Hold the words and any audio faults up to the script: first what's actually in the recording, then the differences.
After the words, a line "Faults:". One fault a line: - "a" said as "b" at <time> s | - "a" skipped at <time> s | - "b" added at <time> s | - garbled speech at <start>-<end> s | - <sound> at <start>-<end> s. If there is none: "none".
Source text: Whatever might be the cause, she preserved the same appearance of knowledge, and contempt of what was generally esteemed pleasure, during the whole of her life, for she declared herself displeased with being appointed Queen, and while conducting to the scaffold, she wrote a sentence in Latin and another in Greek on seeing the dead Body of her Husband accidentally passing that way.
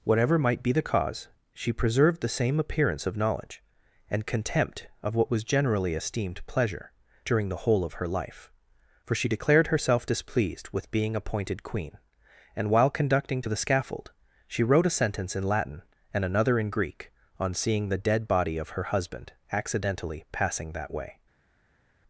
Whatever might be the cause, she preserved the same appearance of knowledge, and contempt of what was generally esteemed pleasure, during the whole of her life, for she declared herself displeased with being appointed Queen, and while conducting to the scaffold, she wrote a sentence in Latin and another in Greek on seeing the dead Body of her Husband accidentally passing that way.
Faults:
none